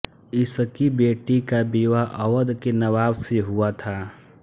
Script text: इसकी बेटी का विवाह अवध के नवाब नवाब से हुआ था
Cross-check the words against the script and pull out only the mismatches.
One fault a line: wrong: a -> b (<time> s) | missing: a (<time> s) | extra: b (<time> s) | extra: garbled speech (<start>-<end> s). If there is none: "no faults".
missing: नवाब (3.2 s)